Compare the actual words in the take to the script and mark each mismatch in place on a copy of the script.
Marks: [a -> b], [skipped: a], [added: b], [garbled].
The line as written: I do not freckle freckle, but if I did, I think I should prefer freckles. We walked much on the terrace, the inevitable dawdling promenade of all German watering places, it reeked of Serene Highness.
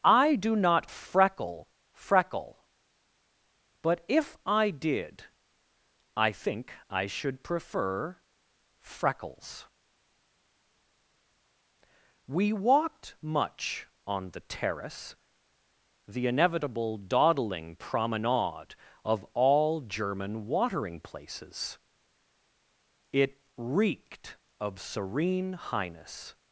I do not freckle freckle, but if I did, I think I should prefer freckles. We walked much on the terrace, the inevitable dawdling promenade of all German watering places, it reeked of Serene Highness.